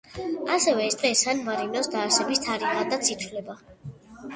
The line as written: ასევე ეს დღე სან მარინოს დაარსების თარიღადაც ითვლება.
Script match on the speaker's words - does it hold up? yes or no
yes